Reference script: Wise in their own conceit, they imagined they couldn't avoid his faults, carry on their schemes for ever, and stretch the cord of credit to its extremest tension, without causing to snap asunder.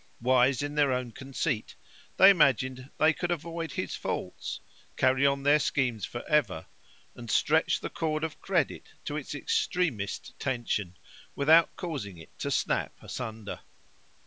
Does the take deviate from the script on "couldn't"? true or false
true